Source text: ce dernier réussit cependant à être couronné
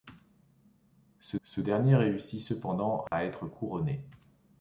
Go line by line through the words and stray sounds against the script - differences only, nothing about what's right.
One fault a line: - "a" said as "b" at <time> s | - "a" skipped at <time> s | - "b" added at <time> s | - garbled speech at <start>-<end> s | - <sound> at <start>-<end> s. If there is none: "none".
- "ce" added at 1.4 s
- dropout at 3.1-3.1 s